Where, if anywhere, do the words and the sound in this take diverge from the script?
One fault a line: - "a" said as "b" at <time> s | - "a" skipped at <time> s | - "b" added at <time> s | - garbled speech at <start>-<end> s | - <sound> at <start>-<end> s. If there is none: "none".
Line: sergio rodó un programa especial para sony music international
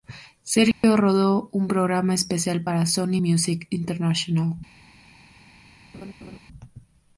- dropout at 0.7-0.8 s
- laugh at 5.9-6.4 s